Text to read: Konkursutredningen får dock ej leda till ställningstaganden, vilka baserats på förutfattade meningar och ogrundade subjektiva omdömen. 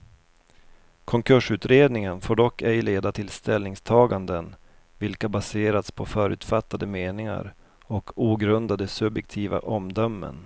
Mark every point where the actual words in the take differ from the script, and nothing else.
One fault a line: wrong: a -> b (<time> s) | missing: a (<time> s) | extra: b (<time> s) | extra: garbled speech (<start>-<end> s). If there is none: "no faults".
no faults